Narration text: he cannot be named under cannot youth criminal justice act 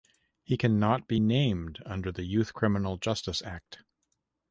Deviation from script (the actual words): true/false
true